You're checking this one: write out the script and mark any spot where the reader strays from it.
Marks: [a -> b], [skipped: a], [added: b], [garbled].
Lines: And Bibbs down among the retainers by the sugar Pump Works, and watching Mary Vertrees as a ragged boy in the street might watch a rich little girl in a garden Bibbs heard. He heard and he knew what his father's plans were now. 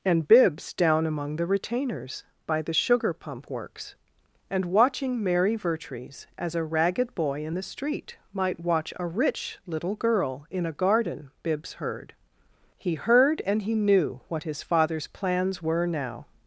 And Bibbs down among the retainers by the sugar Pump Works, and watching Mary Vertrees as a ragged boy in the street might watch a rich little girl in a garden Bibbs heard. He heard and he knew what his father's plans were now.